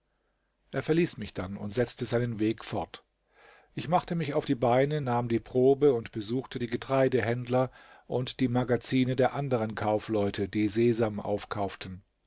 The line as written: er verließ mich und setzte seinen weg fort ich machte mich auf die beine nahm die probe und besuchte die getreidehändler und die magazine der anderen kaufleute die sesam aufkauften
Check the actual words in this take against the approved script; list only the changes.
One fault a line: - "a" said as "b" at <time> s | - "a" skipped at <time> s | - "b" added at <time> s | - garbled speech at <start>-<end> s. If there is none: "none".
- "dann" added at 1.4 s